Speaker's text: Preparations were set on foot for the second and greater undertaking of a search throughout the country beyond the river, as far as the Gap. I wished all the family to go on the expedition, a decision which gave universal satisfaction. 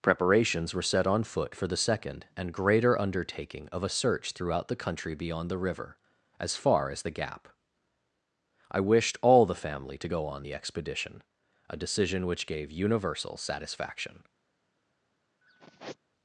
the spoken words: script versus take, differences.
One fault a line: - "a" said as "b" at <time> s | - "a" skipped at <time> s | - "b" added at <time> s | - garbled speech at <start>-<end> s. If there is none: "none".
none